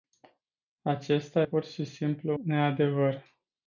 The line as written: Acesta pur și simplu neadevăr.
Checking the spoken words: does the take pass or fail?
pass